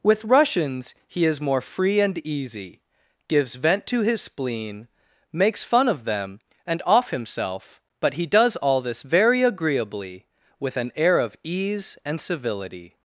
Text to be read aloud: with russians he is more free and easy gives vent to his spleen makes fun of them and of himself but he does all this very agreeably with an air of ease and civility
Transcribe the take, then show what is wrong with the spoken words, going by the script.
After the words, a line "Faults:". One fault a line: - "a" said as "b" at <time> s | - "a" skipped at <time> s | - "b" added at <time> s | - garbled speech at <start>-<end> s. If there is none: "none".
with russians he is more free and easy gives vent to his spleen makes fun of them and off himself but he does all this very agreeably with an air of ease and civility
Faults:
- "of" said as "off" at 6.8 s